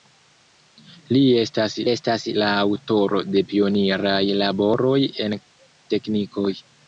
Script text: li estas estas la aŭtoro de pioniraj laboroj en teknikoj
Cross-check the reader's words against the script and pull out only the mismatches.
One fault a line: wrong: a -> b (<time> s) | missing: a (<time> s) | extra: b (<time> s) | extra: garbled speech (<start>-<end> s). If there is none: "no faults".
no faults